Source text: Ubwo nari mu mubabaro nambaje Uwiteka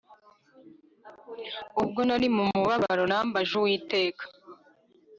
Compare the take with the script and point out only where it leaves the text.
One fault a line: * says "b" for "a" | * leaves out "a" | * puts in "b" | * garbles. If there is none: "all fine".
all fine